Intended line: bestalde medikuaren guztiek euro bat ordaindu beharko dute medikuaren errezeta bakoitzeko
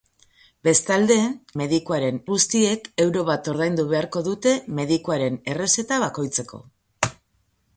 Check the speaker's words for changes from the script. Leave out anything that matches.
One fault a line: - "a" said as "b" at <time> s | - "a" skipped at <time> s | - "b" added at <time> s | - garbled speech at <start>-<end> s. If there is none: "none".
none